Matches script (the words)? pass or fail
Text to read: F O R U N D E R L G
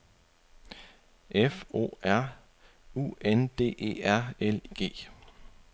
pass